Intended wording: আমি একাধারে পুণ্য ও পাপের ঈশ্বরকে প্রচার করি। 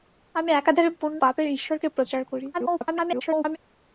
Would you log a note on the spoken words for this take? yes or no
yes